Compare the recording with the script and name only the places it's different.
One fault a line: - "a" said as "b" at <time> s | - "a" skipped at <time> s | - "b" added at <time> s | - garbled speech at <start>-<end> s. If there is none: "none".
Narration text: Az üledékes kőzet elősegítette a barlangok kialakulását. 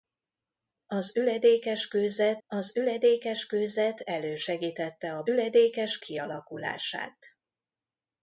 - "az üledékes kőzet" added at 2.5 s
- "barlangok" said as "üledékes" at 5.3 s